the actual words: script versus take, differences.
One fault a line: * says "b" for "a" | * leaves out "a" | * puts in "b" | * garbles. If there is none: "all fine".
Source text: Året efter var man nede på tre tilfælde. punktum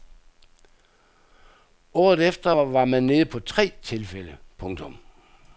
all fine